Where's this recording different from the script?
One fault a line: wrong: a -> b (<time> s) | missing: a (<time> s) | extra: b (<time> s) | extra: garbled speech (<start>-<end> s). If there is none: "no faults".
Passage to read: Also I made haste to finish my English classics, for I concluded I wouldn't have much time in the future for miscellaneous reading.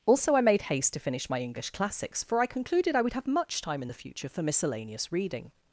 wrong: wouldn't -> would (3.0 s)